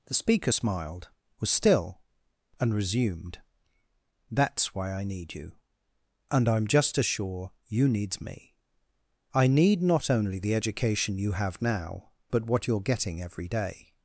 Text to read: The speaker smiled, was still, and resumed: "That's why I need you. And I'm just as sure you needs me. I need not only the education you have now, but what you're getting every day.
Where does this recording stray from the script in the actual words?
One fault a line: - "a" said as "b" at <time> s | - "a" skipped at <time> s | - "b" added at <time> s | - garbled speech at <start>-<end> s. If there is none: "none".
none